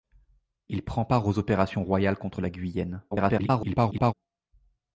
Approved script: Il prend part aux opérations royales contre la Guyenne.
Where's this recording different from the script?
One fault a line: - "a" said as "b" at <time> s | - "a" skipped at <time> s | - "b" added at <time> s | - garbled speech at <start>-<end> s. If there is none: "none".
- garbled speech at 3.1-4.1 s